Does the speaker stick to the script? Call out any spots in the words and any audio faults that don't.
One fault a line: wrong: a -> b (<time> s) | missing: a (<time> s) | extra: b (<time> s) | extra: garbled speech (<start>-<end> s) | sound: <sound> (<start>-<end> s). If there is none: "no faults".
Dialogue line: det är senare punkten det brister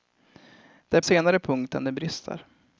no faults